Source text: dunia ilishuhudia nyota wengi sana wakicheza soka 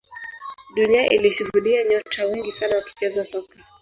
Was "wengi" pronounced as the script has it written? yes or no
yes